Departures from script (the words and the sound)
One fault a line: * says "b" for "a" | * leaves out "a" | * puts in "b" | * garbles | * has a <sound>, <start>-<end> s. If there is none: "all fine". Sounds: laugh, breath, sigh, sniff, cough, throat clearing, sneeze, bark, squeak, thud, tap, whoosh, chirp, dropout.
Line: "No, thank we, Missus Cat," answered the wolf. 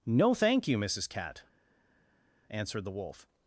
* says "you" for "we"